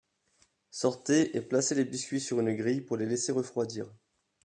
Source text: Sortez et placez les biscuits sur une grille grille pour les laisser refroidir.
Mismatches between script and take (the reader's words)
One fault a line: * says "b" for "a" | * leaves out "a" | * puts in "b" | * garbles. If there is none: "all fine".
* leaves out "grille"